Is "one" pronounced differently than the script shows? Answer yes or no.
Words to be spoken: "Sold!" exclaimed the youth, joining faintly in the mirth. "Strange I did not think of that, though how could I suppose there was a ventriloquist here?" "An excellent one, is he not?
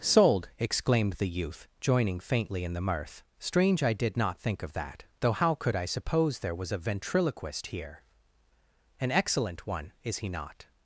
no